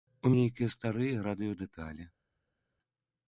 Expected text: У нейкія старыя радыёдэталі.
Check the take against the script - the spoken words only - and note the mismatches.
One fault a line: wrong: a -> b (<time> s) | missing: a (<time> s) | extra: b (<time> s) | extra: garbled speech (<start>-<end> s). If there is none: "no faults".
no faults